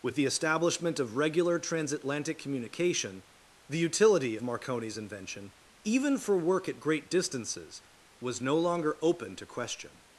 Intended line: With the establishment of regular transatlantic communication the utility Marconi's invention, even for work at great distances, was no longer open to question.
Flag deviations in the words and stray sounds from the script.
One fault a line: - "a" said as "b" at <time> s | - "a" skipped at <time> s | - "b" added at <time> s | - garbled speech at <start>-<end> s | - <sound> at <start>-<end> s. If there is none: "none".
none